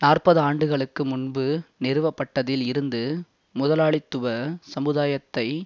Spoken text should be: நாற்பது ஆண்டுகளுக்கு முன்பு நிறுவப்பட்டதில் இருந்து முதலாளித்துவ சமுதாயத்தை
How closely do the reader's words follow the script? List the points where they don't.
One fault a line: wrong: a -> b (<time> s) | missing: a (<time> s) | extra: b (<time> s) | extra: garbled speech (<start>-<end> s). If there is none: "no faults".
no faults